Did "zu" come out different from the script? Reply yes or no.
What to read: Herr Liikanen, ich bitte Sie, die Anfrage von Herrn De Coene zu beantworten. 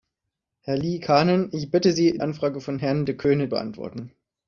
yes